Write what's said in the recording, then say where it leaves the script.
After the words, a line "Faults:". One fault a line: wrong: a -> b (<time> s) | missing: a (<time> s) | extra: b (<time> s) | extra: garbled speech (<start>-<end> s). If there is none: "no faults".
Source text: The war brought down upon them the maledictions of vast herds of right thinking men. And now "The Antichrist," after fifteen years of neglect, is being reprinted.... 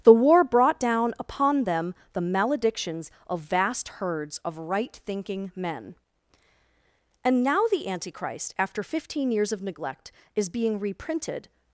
The war brought down upon them the maledictions of vast herds of right thinking men. And now "The Antichrist," after fifteen years of neglect, is being reprinted....
Faults:
no faults